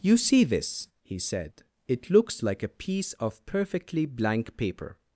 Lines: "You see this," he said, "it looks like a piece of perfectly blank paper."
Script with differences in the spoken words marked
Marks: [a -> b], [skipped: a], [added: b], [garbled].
"You see this," he said, "it looks like a piece of perfectly blank paper."